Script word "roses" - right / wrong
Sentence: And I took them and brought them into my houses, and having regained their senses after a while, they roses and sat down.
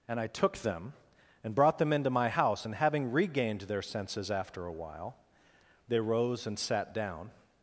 wrong